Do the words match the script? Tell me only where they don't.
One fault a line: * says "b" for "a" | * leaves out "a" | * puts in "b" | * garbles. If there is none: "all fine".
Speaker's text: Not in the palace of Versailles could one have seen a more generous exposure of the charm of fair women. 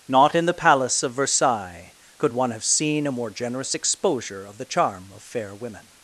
all fine